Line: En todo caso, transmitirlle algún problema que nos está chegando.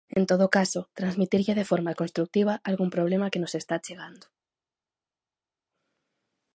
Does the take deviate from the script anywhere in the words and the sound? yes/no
yes